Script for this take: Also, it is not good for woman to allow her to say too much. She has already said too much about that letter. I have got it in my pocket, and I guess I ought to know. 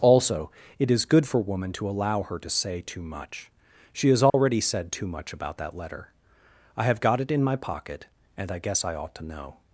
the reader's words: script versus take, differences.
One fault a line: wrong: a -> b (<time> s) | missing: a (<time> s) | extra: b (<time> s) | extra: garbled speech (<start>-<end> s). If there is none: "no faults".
missing: not (1.1 s)